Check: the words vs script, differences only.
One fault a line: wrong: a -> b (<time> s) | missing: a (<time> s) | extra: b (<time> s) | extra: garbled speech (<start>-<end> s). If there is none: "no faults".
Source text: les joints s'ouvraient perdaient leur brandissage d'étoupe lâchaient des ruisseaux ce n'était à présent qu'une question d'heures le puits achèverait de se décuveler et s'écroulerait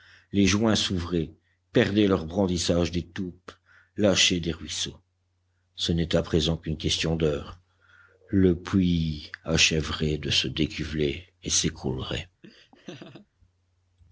no faults